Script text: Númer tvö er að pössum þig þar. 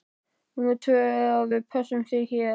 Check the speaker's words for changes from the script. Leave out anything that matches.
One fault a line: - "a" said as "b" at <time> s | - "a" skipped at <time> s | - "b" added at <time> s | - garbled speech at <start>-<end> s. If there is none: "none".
- "við" added at 1.5 s
- "þar" said as "hér" at 2.3 s